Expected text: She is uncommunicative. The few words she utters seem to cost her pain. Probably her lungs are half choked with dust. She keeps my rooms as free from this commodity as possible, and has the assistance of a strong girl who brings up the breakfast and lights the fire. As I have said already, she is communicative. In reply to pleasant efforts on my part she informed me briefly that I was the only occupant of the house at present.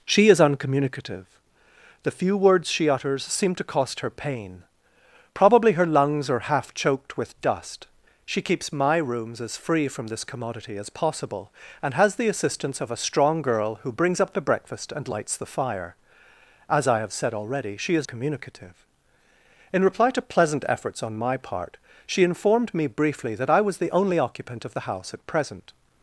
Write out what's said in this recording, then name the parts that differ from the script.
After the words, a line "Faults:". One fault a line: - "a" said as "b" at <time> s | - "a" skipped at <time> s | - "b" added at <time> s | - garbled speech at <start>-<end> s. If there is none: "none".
She is uncommunicative. The few words she utters seem to cost her pain. Probably her lungs are half choked with dust. She keeps my rooms as free from this commodity as possible, and has the assistance of a strong girl who brings up the breakfast and lights the fire. As I have said already, she is communicative. In reply to pleasant efforts on my part she informed me briefly that I was the only occupant of the house at present.
Faults:
none